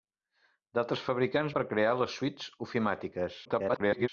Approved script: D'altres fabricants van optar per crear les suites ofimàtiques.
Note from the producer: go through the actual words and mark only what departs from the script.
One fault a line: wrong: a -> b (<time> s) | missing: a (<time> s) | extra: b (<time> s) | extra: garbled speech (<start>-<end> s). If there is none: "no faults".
missing: van optar (1.6 s)
extra: garbled speech (3.4-4.1 s)